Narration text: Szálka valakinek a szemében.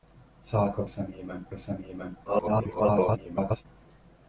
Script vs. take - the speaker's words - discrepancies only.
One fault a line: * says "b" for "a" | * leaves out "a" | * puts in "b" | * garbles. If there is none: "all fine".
* says "szemében" for "valakinek"
* garbles